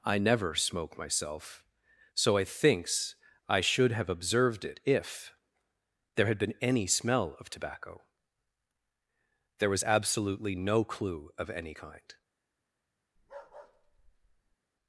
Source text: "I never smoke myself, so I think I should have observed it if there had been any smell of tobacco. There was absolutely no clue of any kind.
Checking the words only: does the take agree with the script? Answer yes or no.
no